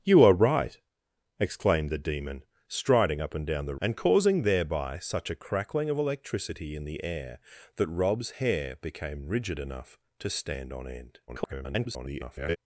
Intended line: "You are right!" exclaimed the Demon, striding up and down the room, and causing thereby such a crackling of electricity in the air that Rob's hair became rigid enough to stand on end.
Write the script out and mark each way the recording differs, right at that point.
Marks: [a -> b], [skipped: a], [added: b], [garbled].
"You are right!" exclaimed the Demon, striding up and down the [skipped: room,] and causing thereby such a crackling of electricity in the air that Rob's hair became rigid enough to stand on end. [garbled]